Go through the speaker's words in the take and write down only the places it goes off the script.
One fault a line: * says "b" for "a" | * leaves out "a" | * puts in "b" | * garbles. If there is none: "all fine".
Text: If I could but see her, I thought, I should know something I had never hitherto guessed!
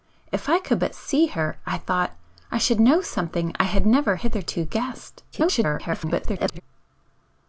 * garbles